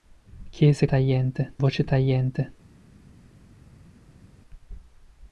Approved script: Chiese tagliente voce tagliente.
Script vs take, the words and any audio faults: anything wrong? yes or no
no